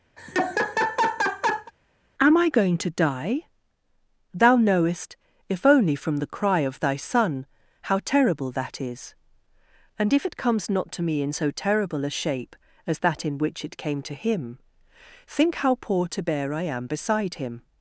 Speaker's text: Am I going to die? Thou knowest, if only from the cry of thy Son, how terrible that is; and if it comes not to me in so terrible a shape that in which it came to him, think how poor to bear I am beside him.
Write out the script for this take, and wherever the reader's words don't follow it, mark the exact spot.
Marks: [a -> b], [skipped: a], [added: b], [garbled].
Am I going to die? Thou knowest, if only from the cry of thy Son, how terrible that is; and if it comes not to me in so terrible a shape [added: as] that in which it came to him, think how poor to bear I am beside him.